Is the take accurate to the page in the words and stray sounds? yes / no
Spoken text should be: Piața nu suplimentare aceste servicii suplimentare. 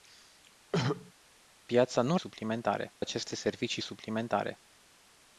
no